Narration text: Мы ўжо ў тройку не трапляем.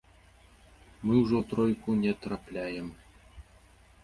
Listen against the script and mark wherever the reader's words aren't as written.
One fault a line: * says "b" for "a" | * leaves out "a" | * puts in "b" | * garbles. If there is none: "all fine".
all fine